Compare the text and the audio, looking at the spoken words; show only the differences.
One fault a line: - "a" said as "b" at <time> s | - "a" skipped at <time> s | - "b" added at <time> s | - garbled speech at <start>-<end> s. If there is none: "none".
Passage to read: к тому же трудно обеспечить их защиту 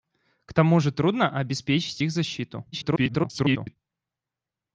- garbled speech at 2.7-3.8 s